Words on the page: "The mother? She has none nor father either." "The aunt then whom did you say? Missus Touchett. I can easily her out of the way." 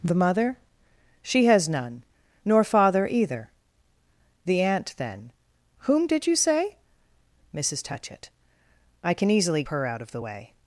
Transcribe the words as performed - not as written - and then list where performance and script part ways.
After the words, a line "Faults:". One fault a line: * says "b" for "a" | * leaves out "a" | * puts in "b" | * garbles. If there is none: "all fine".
"The mother? She has none nor father either." "The aunt then whom did you say? Missus Touchett. I can easily her out of the way."
Faults:
all fine